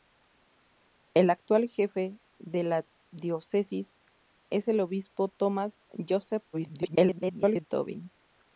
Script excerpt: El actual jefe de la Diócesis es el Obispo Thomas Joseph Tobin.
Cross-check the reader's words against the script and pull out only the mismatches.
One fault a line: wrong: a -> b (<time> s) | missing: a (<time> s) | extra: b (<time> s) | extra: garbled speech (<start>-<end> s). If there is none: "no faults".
extra: garbled speech (6.5-7.7 s)